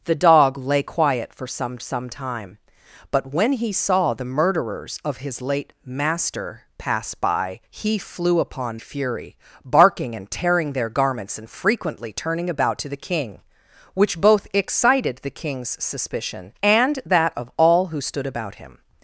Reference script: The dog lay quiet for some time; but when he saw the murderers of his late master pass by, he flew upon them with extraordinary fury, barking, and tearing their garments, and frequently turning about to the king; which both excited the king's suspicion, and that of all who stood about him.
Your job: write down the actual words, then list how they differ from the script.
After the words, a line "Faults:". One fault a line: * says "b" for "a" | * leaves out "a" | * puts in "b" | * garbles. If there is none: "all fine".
The dog lay quiet for some some time; but when he saw the murderers of his late master pass by, he flew upon fury, barking, and tearing their garments, and frequently turning about to the king; which both excited the king's suspicion, and that of all who stood about him.
Faults:
* puts in "some"
* leaves out "them with extraordinary"